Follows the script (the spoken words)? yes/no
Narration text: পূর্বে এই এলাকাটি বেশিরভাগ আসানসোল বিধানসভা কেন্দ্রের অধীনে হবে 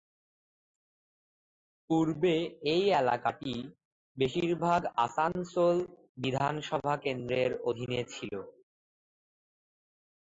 no